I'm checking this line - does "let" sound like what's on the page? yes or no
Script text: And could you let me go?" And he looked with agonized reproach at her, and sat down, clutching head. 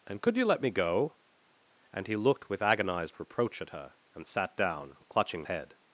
yes